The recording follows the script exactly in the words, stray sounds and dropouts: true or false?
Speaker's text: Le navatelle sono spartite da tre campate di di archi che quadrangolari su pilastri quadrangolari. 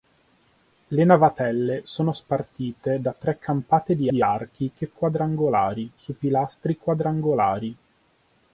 true